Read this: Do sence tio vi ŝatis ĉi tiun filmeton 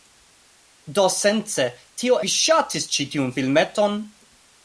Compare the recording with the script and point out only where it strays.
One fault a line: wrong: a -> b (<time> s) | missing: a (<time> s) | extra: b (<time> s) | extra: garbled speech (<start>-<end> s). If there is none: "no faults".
no faults